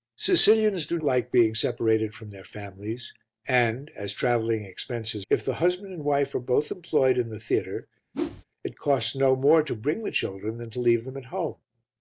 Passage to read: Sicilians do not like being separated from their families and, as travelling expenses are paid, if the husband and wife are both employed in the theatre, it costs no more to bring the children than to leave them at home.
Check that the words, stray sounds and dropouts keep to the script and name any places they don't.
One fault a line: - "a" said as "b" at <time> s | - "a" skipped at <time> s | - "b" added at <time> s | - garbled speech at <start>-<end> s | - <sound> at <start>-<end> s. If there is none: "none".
- "not" skipped at 1.0 s
- "are paid" skipped at 5.3 s
- whoosh at 8.1-8.4 s